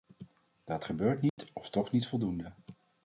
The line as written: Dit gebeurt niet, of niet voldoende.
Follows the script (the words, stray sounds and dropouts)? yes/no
no